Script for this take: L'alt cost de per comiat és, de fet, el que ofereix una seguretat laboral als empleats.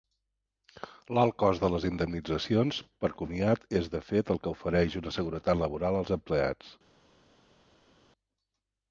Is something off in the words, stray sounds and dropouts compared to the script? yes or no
yes